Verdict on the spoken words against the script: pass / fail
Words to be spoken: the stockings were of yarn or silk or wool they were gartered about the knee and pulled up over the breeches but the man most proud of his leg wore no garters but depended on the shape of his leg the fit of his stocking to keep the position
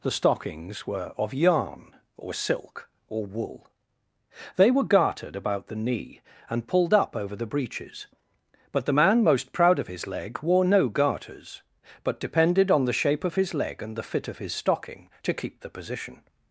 fail